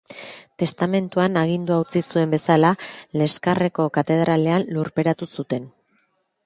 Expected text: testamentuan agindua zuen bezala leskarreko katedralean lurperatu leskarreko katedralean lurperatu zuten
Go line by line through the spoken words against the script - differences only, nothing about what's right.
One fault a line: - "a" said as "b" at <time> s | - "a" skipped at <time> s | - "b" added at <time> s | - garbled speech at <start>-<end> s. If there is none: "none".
- "utzi" added at 1.8 s
- "leskarreko katedralean lurperatu" skipped at 5.3 s